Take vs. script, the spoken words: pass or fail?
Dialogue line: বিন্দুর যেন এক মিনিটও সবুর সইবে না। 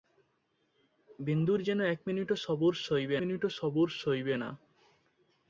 fail